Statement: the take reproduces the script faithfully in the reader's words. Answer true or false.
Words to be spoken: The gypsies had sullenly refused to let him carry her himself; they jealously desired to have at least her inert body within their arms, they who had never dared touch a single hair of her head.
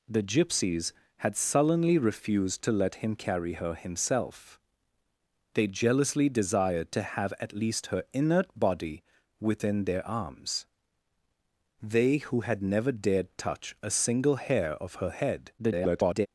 false